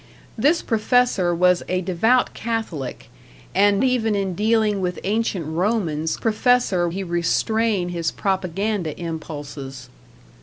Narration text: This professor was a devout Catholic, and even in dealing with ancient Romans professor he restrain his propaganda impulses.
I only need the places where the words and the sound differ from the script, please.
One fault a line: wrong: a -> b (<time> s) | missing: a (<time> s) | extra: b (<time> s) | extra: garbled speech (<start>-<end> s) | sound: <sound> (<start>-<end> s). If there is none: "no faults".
no faults